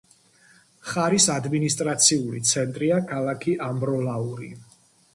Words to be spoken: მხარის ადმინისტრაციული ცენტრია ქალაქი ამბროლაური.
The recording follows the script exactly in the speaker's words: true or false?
true